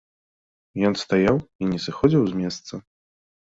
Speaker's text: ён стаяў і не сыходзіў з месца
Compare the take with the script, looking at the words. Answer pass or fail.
pass